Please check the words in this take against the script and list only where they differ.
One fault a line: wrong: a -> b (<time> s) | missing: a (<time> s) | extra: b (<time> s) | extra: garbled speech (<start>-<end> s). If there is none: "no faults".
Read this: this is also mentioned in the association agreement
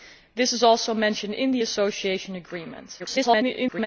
extra: garbled speech (3.0-3.9 s)